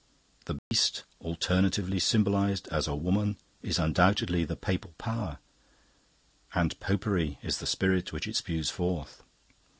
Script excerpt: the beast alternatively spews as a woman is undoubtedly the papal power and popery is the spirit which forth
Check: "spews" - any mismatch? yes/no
yes